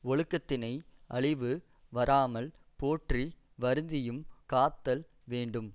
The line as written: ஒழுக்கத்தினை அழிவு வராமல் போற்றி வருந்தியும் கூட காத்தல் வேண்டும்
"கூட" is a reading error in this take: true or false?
true